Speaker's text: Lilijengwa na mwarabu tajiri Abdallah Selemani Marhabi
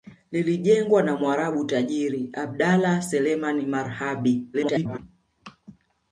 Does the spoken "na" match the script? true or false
true